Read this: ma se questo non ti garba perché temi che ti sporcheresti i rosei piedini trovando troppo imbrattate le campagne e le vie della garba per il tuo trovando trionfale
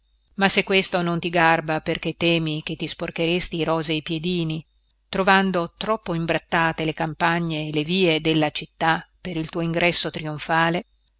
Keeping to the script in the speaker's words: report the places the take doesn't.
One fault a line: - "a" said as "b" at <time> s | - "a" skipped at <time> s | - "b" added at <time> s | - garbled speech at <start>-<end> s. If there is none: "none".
- "garba" said as "città" at 8.5 s
- "trovando" said as "ingresso" at 9.6 s